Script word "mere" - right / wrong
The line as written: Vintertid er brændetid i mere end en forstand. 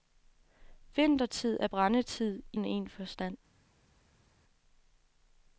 wrong